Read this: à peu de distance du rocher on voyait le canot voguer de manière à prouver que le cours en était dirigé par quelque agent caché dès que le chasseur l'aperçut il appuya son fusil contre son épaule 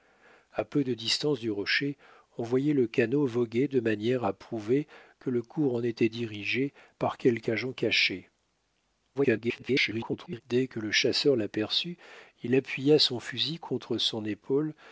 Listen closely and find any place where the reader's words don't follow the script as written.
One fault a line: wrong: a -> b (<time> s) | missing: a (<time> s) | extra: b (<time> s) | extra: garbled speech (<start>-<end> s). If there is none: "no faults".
extra: garbled speech (9.1-10.4 s)